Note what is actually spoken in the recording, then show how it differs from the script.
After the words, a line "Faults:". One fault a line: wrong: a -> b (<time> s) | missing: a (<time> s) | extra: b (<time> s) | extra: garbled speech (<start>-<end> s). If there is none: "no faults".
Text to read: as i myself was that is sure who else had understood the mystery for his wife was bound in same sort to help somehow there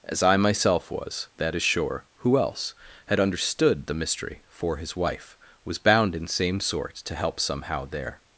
as i myself was that is sure who else had understood the mystery for his wife was bound in same sort to help somehow there
Faults:
no faults